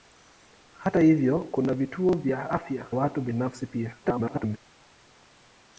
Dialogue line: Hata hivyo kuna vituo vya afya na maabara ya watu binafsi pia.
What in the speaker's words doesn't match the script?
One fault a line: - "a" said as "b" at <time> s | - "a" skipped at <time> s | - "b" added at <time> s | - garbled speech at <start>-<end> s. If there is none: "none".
- "na maabara ya" skipped at 2.9 s
- garbled speech at 4.0-4.6 s